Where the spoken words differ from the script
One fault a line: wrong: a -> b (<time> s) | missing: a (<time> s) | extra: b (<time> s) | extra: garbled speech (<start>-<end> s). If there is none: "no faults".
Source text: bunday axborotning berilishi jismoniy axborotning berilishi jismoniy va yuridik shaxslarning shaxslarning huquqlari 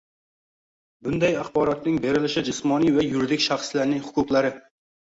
missing: axborotning berilishi jismoniy (3.0 s)
missing: shaxslarning (4.1 s)